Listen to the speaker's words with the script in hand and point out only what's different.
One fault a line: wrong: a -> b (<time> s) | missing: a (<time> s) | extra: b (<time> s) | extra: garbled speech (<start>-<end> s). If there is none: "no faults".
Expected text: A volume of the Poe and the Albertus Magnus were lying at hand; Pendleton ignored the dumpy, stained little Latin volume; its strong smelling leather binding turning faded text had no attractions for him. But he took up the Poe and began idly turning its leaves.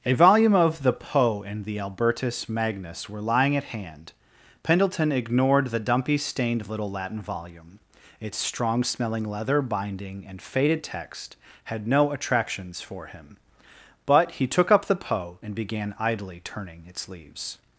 wrong: turning -> and (10.3 s)